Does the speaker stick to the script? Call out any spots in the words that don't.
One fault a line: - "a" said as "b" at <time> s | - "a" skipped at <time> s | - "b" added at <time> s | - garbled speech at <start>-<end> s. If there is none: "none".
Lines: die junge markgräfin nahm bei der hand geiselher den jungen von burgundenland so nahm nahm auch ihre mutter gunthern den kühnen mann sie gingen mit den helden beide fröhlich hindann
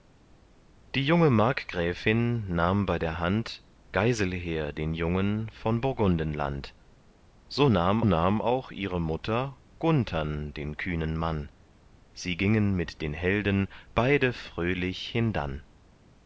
none